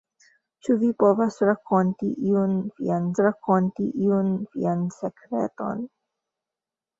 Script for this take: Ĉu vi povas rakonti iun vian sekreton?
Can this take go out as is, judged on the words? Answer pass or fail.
fail